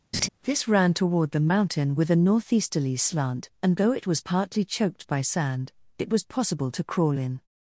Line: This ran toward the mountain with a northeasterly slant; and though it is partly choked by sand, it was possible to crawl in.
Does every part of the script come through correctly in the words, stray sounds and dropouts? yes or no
no